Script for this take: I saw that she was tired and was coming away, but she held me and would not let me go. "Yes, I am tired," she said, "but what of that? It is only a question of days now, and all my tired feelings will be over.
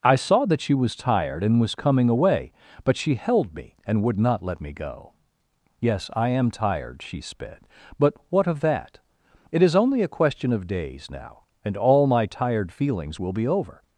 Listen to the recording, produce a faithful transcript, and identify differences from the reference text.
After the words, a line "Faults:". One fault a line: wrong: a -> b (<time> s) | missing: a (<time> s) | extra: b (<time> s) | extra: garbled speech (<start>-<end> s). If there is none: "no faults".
I saw that she was tired and was coming away, but she held me and would not let me go. "Yes, I am tired," she sped, "but what of that? It is only a question of days now, and all my tired feelings will be over.
Faults:
wrong: said -> sped (7.2 s)